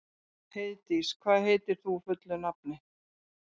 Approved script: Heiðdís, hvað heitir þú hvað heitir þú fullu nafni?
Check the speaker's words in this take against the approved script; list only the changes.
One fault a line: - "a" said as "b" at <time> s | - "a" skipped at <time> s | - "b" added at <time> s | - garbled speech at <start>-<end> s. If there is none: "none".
- "hvað heitir þú" skipped at 2.0 s